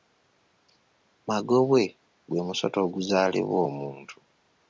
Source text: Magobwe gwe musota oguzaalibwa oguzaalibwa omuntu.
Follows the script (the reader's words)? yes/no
no